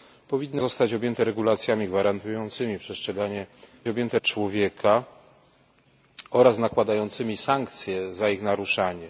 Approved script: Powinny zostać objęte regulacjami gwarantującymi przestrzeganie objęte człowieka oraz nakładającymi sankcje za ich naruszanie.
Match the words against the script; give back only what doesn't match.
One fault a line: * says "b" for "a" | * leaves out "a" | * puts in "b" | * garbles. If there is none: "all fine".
all fine